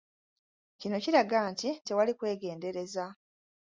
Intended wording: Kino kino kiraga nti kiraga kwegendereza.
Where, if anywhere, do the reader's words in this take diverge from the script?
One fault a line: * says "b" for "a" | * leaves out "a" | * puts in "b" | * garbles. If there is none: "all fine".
* leaves out "kino"
* says "tewali" for "kiraga"